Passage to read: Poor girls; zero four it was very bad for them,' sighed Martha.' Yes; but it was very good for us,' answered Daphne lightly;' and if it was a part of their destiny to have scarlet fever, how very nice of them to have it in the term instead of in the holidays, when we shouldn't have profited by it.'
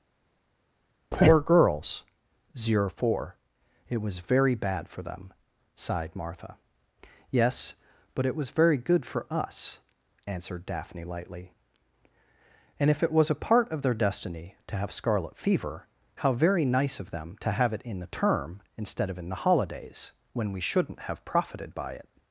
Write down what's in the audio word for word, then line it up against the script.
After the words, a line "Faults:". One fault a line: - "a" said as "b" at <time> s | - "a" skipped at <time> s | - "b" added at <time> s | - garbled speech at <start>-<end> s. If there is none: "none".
Poor girls; zero four it was very bad for them,' sighed Martha.' Yes; but it was very good for us,' answered Daphne lightly;' and if it was a part of their destiny to have scarlet fever, how very nice of them to have it in the term instead of in the holidays, when we shouldn't have profited by it.'
Faults:
none